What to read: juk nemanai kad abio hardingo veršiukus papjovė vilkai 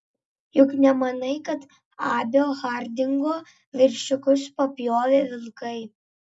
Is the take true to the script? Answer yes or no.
yes